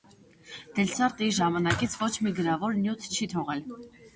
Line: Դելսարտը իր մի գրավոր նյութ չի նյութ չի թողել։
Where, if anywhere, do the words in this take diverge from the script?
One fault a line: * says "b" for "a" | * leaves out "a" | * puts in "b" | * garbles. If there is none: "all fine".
* puts in "ժամանակից ոչ"
* leaves out "նյութ չի"